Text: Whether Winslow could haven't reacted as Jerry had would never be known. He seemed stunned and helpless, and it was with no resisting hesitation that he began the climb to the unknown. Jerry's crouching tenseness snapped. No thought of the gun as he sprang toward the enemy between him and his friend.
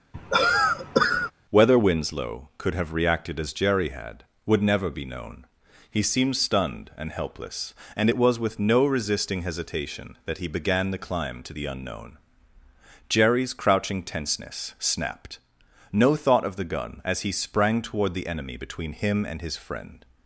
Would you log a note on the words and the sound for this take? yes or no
yes